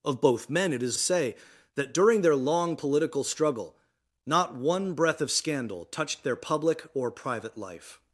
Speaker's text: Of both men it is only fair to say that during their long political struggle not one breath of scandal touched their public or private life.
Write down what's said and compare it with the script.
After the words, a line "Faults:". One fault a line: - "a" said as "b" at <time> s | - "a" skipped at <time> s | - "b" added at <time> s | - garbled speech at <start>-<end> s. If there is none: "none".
Of both men it is say that during their long political struggle not one breath of scandal touched their public or private life.
Faults:
- "only fair to" skipped at 1.0 s